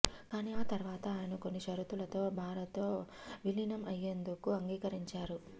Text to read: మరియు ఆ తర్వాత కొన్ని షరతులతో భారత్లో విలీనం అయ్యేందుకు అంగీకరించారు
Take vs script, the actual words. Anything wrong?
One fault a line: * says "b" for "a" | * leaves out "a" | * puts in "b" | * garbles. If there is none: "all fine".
* says "కానీ" for "మరియు"
* puts in "ఆయన"